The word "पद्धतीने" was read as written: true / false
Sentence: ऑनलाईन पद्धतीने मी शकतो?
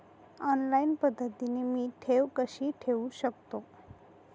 true